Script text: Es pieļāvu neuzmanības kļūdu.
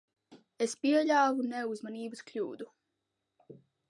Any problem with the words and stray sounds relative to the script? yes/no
no